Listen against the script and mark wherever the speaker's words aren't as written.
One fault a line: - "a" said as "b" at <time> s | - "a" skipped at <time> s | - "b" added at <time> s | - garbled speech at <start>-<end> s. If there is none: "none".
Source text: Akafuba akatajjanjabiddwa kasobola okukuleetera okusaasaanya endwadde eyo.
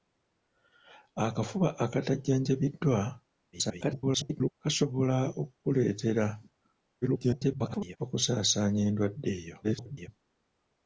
- garbled speech at 3.5-4.6 s
- garbled speech at 7.0-8.0 s
- garbled speech at 9.6-10.1 s